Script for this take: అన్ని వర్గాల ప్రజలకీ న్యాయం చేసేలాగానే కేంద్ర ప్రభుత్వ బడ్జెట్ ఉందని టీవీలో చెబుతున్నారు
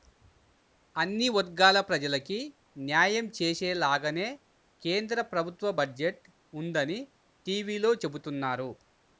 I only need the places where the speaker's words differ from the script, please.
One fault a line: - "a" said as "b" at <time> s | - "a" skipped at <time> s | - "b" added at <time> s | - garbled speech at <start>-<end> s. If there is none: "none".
none